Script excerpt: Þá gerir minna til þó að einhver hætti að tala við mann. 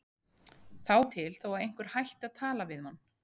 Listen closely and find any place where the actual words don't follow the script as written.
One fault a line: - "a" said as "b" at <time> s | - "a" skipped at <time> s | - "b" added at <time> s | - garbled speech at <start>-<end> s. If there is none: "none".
- "gerir minna" skipped at 0.9 s